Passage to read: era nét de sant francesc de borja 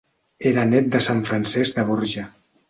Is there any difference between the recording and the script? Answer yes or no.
no